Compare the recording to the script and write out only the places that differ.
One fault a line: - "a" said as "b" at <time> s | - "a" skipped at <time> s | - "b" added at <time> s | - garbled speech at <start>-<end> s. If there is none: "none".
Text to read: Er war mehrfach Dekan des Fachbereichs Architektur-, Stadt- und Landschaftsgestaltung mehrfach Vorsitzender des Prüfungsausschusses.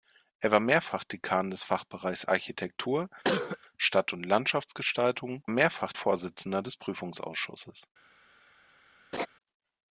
none